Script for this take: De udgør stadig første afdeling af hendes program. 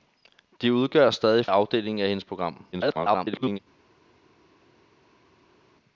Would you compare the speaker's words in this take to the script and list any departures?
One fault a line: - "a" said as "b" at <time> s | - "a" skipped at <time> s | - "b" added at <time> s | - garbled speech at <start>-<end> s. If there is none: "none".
- "første" skipped at 1.4 s
- garbled speech at 2.7-3.6 s